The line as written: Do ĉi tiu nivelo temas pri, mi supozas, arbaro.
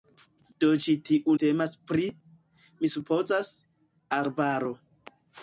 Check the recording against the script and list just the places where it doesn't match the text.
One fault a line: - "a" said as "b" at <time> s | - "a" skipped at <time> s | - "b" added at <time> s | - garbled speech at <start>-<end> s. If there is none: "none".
- "nivelo" skipped at 1.3 s